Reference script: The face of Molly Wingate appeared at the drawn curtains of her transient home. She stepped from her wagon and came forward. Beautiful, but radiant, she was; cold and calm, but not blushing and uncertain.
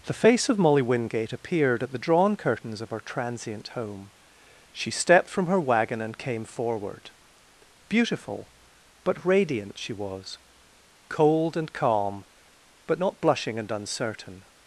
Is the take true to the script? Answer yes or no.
yes